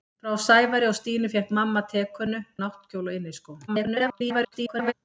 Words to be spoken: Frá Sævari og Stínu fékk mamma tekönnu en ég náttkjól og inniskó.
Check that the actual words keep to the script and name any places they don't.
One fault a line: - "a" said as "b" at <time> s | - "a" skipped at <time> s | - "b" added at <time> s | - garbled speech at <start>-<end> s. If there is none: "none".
- "en ég" skipped at 2.4 s
- garbled speech at 3.7-4.9 s